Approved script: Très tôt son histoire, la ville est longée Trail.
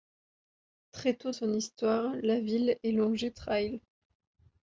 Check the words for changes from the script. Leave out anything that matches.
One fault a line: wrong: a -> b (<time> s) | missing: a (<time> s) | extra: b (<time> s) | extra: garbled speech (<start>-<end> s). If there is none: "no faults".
no faults